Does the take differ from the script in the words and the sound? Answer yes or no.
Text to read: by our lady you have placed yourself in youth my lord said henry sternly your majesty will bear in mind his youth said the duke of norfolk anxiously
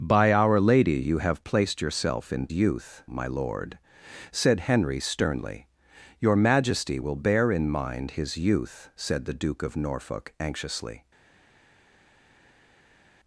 no